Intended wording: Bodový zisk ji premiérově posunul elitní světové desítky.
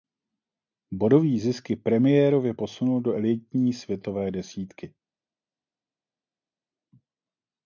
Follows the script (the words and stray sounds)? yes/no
no